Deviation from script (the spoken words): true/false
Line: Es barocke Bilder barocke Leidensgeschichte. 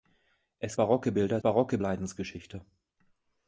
false